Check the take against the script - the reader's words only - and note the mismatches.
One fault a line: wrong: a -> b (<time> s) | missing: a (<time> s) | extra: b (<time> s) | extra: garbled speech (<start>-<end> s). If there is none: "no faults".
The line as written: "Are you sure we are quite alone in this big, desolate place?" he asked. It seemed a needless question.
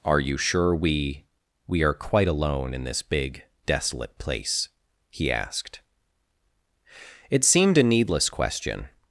extra: we (1.7 s)